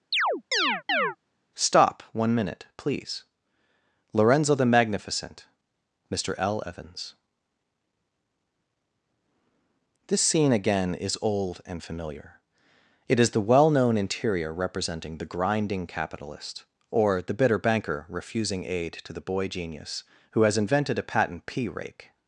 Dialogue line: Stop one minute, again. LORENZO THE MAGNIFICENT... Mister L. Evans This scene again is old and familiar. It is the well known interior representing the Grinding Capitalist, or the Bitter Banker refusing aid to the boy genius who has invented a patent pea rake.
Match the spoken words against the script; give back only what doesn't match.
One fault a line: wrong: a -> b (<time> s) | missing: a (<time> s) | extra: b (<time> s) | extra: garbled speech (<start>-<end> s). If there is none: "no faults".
wrong: again -> please (2.8 s)